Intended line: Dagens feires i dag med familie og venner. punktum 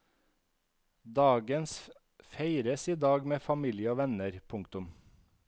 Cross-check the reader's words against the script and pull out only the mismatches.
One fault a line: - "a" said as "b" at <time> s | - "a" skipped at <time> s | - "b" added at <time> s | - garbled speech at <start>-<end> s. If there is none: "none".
none